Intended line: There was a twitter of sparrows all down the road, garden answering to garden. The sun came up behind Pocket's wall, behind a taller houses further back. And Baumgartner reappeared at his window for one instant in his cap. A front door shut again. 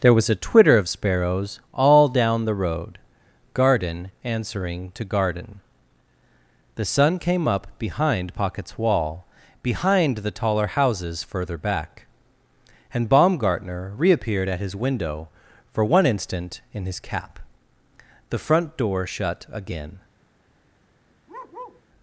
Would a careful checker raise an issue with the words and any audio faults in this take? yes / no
yes